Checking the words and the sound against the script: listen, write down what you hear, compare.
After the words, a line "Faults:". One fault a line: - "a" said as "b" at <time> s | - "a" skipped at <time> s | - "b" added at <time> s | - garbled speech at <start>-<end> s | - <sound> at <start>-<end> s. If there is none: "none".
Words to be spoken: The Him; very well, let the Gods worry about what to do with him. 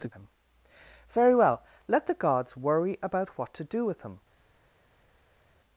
The Him; very well, let the Gods worry about what to do with him.
Faults:
none